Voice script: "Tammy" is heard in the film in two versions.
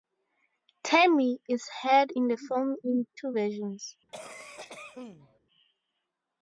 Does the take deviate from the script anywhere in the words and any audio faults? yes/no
yes